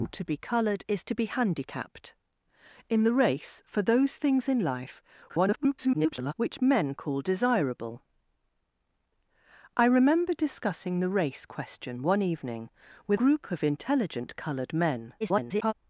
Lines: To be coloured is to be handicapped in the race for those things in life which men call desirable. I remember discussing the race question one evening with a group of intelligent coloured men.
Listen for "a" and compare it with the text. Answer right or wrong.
wrong